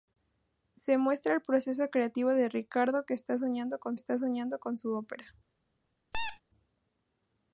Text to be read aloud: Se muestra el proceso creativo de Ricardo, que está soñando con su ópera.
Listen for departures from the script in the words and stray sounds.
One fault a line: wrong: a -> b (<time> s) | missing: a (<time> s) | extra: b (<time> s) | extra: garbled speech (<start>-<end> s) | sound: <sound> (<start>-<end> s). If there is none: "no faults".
extra: está soñando con (3.9 s)
sound: squeak (6.1-6.4 s)